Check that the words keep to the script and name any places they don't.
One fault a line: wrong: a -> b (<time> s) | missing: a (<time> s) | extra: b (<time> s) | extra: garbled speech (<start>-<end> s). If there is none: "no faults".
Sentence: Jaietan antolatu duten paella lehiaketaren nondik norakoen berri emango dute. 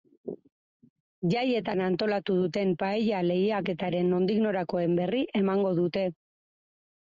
no faults